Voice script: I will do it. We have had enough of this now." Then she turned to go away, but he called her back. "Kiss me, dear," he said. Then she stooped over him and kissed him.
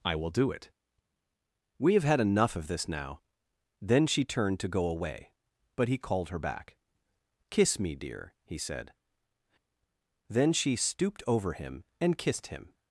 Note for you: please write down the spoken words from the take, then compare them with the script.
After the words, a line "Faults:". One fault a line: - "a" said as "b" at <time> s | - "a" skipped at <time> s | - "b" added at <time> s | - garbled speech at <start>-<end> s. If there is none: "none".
I will do it. We have had enough of this now." Then she turned to go away, but he called her back. "Kiss me, dear," he said. Then she stooped over him and kissed him.
Faults:
none